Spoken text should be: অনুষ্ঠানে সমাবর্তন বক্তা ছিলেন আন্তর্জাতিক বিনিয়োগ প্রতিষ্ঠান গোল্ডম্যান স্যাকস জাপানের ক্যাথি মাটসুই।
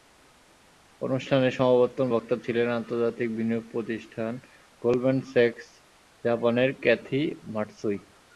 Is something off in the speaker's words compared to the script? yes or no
no